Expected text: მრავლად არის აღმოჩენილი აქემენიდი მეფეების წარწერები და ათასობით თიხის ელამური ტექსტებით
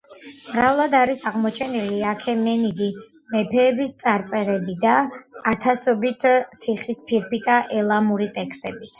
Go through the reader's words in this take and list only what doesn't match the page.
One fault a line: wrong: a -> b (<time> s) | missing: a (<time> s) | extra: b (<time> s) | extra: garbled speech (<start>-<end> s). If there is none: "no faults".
extra: ფირფიტა (7.1 s)